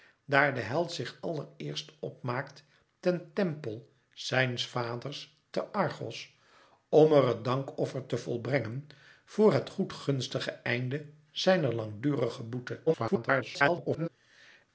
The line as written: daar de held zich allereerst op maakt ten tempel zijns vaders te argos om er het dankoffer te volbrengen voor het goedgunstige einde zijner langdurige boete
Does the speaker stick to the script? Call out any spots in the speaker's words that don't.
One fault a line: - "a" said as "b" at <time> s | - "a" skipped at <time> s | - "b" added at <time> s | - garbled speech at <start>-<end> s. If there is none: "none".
- garbled speech at 12.9-14.1 s